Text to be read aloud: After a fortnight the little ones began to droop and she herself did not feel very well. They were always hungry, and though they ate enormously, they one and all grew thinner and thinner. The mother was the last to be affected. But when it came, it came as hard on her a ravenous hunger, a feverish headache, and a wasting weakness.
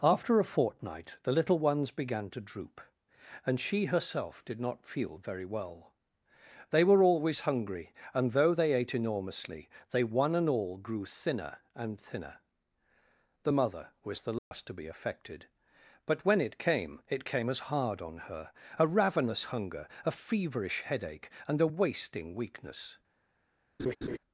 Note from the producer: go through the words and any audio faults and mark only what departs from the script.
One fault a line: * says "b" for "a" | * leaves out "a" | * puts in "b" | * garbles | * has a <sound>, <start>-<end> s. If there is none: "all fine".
* has a dropout, 14.4-14.5 s
* has a laugh, 23.8-24.2 s